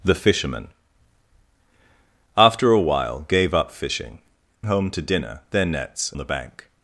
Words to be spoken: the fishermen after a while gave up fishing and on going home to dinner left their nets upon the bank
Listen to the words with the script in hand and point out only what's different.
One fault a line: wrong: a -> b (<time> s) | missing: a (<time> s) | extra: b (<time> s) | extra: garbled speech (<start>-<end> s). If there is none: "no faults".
missing: and on going (4.2 s)
missing: left (5.4 s)
missing: upon (6.1 s)